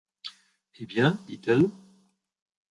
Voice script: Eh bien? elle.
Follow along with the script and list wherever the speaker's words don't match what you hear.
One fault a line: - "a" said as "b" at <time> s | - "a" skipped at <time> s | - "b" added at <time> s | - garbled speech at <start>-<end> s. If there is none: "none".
- "dit" added at 1.3 s